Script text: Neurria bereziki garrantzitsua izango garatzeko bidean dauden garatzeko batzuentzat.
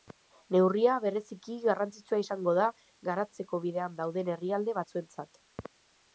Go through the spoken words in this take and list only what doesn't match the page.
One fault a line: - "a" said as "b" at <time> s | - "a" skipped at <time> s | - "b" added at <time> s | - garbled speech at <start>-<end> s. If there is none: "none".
- "da" added at 2.6 s
- "garatzeko" said as "herrialde" at 4.4 s